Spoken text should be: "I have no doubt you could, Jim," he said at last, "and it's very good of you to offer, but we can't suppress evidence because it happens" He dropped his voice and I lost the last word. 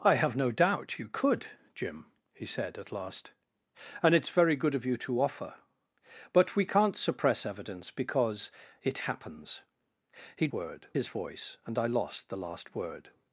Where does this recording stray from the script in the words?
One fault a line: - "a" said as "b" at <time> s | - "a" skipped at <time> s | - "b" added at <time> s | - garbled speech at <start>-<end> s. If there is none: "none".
- "dropped" said as "word" at 10.5 s